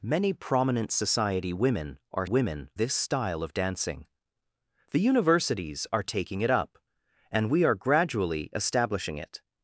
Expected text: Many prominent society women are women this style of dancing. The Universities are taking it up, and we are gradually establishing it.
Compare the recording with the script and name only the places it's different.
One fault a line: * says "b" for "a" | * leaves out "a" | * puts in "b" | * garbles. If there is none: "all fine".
all fine